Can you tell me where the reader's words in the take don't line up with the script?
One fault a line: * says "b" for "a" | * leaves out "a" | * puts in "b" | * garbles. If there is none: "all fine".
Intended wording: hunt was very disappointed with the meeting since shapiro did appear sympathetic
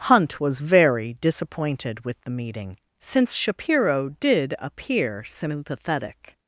all fine